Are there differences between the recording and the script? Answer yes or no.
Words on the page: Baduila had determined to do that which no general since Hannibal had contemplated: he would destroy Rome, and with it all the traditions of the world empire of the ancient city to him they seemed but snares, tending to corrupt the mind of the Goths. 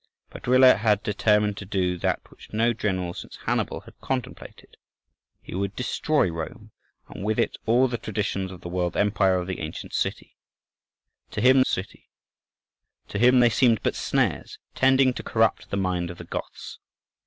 yes